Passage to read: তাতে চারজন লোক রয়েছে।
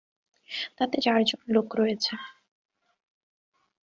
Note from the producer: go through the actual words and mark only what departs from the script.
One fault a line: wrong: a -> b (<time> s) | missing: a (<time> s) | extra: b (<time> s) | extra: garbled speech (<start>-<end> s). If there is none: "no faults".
no faults